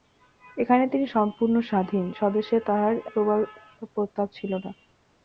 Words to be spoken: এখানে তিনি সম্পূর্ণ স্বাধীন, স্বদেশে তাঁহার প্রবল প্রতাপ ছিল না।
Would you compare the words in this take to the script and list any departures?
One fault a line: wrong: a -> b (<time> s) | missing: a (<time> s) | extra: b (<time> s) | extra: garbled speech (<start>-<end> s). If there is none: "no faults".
no faults